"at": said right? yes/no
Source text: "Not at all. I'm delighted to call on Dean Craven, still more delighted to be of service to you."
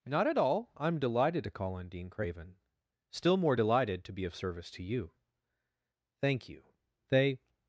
yes